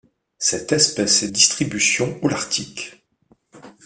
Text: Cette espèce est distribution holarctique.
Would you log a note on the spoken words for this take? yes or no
no